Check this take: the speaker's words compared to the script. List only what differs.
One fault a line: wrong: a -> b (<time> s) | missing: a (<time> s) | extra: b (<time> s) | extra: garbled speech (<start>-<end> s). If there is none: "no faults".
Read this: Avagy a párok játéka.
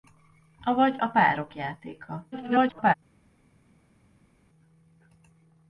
extra: garbled speech (2.3-2.9 s)